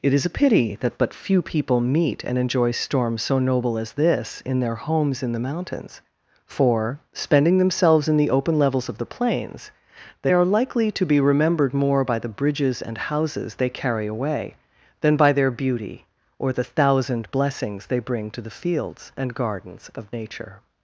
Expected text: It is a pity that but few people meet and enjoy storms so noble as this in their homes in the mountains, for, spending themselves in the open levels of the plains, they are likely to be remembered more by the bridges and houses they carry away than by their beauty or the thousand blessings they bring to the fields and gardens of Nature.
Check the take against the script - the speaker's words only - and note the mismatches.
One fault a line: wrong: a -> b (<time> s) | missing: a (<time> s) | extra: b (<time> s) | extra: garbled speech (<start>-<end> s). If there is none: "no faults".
no faults